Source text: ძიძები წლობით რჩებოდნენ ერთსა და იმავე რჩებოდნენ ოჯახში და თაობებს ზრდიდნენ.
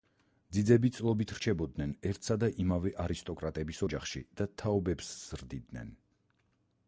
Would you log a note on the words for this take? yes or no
yes